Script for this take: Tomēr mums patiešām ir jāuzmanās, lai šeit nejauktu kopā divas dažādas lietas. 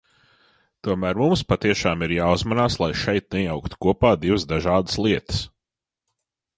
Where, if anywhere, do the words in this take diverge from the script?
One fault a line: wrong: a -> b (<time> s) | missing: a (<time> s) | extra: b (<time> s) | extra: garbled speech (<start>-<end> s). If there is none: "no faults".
no faults